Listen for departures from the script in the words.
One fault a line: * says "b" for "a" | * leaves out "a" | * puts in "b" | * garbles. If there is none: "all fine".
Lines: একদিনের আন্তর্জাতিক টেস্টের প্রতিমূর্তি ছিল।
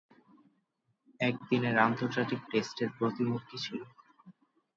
all fine